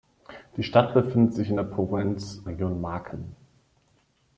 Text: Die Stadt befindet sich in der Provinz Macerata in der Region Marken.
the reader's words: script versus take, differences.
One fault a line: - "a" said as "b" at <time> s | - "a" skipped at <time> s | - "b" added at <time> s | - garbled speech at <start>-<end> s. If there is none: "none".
- "Macerata in der" skipped at 2.4 s